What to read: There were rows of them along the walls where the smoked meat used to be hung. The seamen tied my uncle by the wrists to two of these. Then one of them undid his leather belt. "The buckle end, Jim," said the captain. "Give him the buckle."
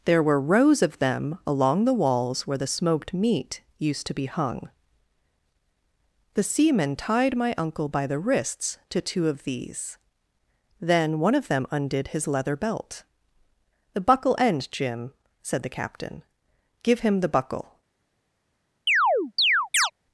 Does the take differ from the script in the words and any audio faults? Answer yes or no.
yes